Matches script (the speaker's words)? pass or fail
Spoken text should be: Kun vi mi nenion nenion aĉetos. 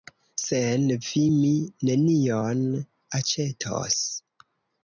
fail